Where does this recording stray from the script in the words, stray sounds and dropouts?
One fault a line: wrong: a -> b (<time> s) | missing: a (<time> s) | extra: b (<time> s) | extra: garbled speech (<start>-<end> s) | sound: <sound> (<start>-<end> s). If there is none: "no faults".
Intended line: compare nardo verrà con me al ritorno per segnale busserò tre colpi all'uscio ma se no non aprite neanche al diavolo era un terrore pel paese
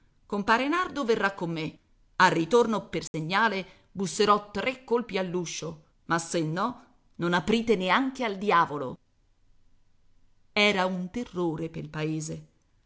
sound: dropout (3.1-3.1 s)